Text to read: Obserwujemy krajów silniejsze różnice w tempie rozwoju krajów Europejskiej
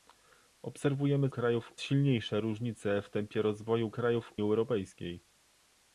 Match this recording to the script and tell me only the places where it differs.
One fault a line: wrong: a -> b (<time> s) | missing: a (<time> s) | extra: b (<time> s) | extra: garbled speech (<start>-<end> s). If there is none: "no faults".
no faults